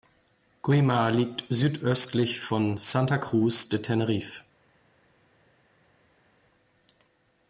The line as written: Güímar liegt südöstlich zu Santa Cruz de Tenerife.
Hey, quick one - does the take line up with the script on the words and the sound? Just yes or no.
no